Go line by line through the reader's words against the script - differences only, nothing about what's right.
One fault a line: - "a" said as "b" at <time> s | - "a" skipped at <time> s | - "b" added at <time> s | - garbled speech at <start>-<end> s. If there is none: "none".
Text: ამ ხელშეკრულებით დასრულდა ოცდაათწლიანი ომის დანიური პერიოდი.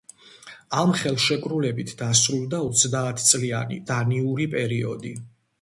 - "ომის" skipped at 3.8 s